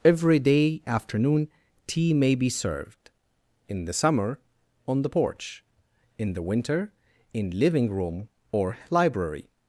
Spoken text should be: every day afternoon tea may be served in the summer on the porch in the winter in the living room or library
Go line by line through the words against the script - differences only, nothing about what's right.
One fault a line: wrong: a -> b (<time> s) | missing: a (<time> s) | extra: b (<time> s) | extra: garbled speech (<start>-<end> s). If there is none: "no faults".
missing: the (7.6 s)